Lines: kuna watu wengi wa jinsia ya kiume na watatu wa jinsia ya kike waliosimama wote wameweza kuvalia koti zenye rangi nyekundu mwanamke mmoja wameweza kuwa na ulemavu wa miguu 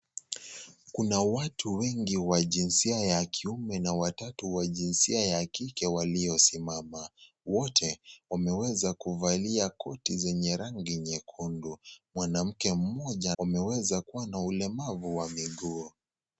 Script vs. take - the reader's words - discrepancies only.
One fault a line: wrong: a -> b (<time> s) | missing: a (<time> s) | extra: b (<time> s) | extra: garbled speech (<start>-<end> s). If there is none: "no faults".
no faults